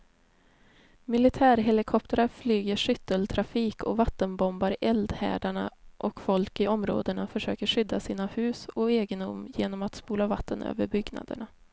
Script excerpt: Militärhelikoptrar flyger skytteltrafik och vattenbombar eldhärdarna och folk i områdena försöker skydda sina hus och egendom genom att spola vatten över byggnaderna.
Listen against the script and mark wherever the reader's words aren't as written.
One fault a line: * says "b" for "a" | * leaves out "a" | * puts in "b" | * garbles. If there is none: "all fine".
all fine